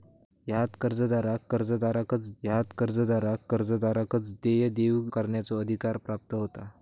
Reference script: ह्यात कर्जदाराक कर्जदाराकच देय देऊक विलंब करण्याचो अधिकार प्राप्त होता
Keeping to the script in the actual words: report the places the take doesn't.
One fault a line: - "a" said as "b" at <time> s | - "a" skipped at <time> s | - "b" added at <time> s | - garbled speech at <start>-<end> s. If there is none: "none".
- "ह्यात कर्जदाराक कर्जदाराकच" added at 2.4 s
- "विलंब" skipped at 5.0 s